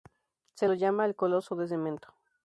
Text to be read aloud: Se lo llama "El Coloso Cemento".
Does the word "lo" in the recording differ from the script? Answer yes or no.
no